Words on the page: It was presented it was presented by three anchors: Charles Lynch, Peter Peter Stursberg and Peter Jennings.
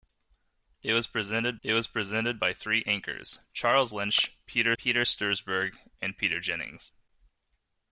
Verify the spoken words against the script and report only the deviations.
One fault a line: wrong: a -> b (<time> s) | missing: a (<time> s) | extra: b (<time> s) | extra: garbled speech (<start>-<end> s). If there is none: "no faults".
no faults